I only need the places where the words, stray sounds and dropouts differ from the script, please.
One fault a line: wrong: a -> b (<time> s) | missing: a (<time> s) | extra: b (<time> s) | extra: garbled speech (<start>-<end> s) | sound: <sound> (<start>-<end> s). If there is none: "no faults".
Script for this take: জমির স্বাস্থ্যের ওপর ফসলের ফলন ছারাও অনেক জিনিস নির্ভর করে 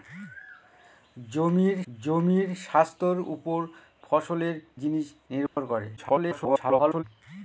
extra: জমির (1.9 s)
missing: ফলন ছারাও অনেক (4.6 s)
sound: dropout (5.5-5.6 s)
extra: garbled speech (6.0-7.0 s)